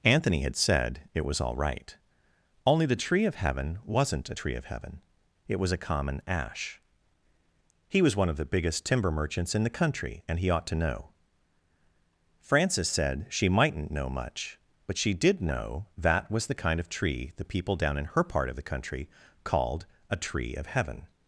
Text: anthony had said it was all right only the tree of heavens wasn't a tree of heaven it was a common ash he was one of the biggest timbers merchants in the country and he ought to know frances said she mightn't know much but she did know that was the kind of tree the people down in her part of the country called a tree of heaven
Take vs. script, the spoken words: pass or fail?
fail